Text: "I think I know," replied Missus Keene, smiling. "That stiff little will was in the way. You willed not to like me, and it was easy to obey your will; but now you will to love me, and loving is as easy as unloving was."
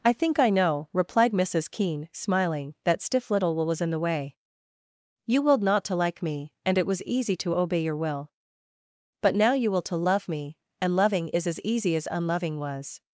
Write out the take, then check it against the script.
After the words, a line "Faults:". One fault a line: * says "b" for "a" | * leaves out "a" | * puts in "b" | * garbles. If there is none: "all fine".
"I think I know," replied Missus Keene, smiling. "That stiff little will was in the way. You willed not to like me, and it was easy to obey your will; but now you will to love me, and loving is as easy as unloving was."
Faults:
all fine